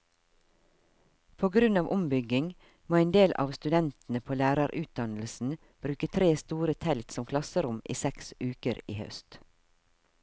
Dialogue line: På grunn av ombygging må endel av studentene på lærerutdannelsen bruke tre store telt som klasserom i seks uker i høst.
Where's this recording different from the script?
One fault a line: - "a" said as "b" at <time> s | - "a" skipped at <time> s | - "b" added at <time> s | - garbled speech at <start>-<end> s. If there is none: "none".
none